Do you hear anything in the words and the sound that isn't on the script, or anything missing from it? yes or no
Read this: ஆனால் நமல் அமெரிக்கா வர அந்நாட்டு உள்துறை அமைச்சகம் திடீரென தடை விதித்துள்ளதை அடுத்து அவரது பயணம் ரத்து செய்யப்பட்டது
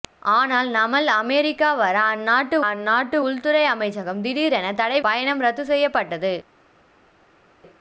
yes